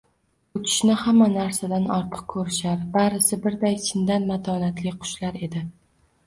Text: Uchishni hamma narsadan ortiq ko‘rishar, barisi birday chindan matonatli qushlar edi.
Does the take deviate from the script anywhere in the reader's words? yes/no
no